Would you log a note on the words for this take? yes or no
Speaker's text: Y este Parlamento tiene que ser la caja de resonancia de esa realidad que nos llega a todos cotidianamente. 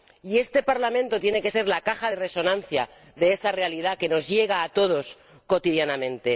no